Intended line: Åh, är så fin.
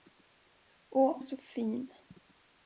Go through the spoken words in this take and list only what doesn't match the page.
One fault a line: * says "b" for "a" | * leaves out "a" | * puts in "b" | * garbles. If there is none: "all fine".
all fine